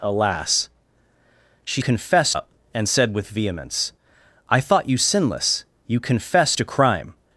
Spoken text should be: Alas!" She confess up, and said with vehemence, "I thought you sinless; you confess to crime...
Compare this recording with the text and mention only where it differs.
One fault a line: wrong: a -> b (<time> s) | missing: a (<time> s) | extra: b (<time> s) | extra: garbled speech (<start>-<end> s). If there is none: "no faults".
no faults